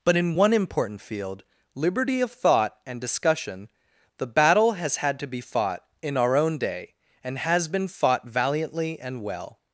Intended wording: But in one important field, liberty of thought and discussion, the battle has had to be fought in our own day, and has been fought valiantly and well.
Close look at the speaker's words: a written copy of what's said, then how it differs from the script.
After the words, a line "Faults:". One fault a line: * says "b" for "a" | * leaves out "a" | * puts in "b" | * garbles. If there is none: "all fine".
But in one important field, liberty of thought and discussion, the battle has had to be fought in our own day, and has been fought valiantly and well.
Faults:
all fine